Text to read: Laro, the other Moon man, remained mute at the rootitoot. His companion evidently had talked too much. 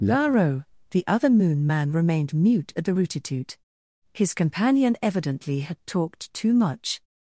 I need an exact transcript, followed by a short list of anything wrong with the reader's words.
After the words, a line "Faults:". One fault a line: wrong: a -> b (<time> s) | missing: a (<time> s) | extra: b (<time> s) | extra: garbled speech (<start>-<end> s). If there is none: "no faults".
Laro, the other Moon man, remained mute at the rootitoot. His companion evidently had talked too much.
Faults:
no faults